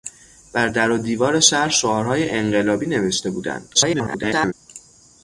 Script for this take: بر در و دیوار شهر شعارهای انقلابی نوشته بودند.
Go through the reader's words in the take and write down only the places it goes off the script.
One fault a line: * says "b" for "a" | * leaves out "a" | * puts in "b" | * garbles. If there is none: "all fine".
* garbles